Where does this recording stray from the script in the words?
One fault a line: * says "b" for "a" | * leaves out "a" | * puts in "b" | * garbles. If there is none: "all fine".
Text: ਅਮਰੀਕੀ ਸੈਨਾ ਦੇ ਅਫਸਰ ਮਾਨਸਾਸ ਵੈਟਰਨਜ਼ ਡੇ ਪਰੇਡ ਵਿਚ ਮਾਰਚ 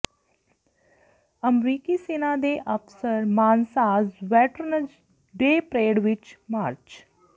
all fine